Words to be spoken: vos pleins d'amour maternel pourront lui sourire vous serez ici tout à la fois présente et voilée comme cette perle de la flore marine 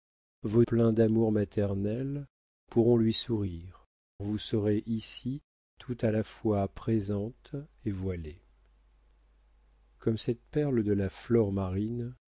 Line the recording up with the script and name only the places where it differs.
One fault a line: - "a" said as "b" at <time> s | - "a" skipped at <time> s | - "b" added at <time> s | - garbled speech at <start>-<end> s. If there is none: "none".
none